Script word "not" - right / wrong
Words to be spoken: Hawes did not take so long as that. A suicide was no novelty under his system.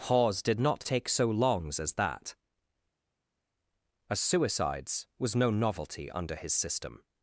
right